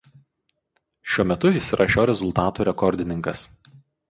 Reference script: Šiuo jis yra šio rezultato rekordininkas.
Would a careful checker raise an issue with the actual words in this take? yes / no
yes